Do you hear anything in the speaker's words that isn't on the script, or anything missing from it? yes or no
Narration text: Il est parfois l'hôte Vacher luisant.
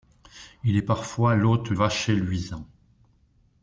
no